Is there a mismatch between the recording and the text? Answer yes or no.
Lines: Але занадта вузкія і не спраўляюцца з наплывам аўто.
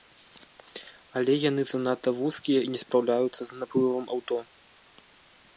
yes